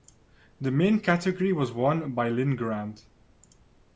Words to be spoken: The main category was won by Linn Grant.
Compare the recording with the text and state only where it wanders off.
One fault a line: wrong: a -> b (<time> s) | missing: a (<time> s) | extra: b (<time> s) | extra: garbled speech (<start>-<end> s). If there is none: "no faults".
no faults